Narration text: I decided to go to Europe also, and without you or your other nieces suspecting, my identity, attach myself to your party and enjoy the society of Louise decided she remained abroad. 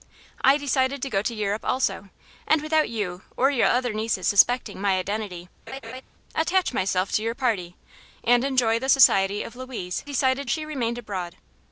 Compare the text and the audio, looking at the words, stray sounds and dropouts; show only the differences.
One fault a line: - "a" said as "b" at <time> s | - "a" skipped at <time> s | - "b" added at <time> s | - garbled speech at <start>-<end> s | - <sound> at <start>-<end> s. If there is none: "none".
- laugh at 5.7-6.0 s